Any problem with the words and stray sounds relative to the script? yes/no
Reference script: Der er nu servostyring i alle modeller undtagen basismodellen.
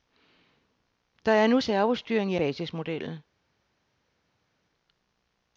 yes